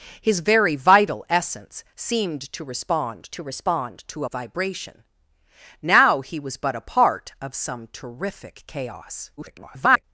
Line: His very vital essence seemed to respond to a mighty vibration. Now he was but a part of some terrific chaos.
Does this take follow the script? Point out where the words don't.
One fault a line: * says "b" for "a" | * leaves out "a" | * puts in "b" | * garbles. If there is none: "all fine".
* puts in "respond to"
* leaves out "mighty"
* garbles